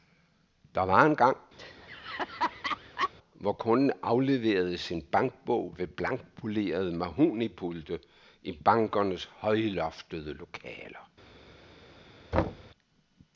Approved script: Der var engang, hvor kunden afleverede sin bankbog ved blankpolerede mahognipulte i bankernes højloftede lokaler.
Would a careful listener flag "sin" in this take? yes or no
no